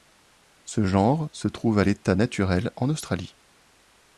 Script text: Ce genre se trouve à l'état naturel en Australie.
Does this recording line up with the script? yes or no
yes